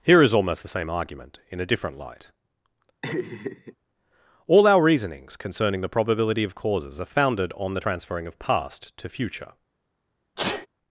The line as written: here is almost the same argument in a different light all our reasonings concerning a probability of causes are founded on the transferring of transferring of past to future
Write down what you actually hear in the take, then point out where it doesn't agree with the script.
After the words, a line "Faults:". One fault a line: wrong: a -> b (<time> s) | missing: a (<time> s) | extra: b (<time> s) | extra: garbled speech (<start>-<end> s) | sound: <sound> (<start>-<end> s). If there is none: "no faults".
here is almost the same argument in a different light all our reasonings concerning the probability of causes are founded on the transferring of past to future
Faults:
sound: laugh (3.0-3.8 s)
wrong: a -> the (5.8 s)
missing: transferring of (8.4 s)
sound: sneeze (10.4-10.7 s)